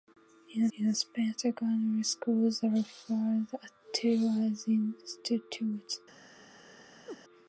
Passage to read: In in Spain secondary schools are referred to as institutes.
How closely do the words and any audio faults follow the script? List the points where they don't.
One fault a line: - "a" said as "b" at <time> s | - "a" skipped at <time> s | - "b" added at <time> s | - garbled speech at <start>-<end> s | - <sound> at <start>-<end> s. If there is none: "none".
- chirp at 7.1-7.2 s